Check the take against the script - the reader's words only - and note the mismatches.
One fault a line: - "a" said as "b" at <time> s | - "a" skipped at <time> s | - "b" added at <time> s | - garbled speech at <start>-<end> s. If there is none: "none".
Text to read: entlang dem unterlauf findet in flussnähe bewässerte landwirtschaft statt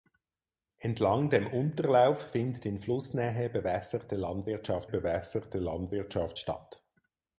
- "bewässerte landwirtschaft" added at 4.9 s